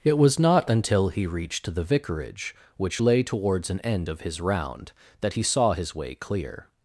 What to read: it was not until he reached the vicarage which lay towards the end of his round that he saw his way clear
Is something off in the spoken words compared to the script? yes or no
yes